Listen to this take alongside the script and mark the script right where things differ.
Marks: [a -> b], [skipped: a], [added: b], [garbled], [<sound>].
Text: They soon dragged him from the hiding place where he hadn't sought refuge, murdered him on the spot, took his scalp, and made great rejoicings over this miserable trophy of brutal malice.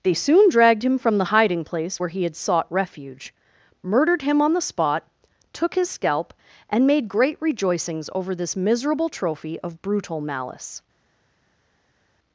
They soon dragged him from the hiding place where he [hadn't -> had] sought refuge, murdered him on the spot, took his scalp, and made great rejoicings over this miserable trophy of brutal malice.